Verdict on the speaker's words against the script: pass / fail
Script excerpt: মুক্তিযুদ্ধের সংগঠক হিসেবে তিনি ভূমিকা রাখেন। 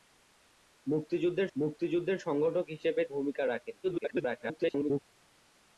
fail